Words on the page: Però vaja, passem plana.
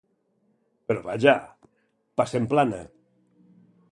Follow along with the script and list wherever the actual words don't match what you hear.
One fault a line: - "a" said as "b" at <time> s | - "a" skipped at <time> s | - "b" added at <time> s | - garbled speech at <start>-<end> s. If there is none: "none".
none